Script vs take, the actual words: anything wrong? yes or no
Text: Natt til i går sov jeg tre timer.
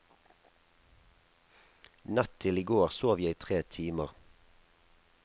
no